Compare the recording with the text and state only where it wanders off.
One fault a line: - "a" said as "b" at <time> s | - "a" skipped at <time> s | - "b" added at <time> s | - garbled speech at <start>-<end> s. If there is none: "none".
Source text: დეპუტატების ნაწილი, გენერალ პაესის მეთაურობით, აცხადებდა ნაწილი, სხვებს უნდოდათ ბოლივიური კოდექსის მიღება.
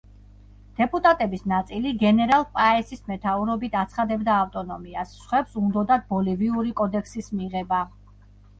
- "ნაწილი" said as "ავტონომიას" at 4.5 s